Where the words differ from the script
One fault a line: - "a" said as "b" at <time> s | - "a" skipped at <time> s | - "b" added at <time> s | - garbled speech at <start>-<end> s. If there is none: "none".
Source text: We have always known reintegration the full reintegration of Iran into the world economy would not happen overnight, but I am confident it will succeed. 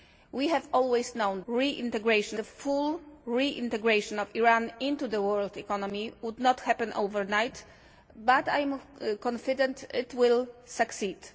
none